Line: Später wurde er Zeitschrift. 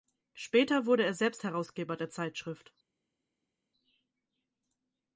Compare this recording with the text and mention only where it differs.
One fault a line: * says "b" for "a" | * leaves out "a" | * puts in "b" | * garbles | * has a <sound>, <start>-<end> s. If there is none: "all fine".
* puts in "selbst Herausgeber der"